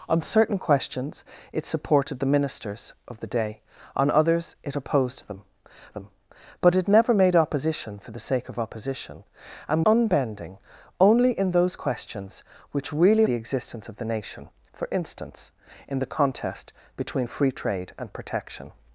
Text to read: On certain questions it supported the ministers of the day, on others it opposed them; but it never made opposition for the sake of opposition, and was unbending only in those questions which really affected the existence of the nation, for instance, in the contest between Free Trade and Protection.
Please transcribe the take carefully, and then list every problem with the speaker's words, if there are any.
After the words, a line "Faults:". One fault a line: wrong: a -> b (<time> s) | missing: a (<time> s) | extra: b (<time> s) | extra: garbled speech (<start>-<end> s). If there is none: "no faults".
On certain questions it supported the ministers of the day, on others it opposed them them; but it never made opposition for the sake of opposition, and unbending only in those questions which really the existence of the nation, for instance, in the contest between Free Trade and Protection.
Faults:
extra: them (5.9 s)
missing: was (9.8 s)
missing: affected (13.2 s)